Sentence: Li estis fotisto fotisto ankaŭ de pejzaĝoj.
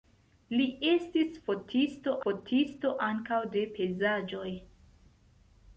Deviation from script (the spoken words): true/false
false